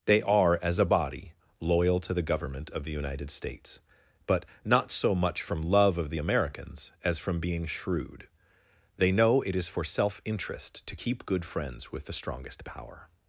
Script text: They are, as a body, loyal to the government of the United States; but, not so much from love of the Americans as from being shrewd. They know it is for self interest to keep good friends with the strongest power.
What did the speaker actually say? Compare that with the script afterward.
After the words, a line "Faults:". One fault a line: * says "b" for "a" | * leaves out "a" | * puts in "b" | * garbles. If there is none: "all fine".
They are, as a body, loyal to the government of the United States; but, not so much from love of the Americans as from being shrewd. They know it is for self interest to keep good friends with the strongest power.
Faults:
all fine